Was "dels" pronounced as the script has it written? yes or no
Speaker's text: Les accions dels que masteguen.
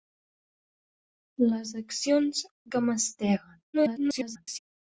no